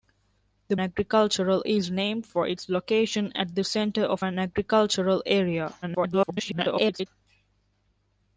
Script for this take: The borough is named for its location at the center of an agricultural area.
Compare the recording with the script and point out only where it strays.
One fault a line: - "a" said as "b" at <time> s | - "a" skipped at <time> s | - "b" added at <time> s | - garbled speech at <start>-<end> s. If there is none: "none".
- "borough" said as "agricultural" at 0.8 s
- garbled speech at 5.8-7.1 s